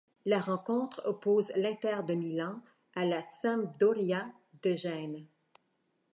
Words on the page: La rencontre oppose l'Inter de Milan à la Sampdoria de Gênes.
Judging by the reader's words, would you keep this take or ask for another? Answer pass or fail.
pass